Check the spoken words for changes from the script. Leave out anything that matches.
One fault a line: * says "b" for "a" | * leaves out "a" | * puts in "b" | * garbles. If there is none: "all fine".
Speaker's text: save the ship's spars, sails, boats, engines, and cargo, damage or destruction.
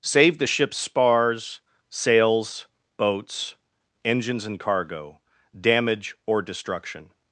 all fine